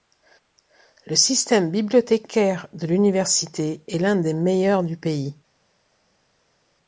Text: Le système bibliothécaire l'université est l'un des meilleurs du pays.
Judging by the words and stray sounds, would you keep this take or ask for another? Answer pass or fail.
fail